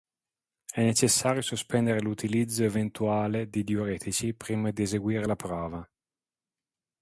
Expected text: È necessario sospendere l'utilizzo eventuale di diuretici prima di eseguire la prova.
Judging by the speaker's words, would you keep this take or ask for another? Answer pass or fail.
pass